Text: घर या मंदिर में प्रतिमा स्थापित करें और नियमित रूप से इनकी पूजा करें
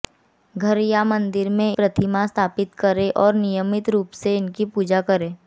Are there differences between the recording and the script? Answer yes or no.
no